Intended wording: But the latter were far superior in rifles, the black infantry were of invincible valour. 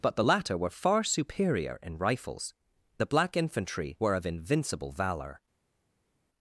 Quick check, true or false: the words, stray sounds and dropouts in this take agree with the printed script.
true